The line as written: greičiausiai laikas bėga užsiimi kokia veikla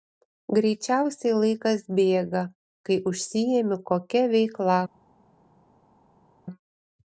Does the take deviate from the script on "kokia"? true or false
false